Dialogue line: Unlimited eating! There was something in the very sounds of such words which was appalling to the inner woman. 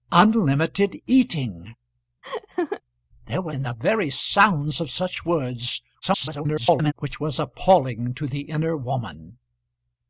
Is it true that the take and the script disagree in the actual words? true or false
true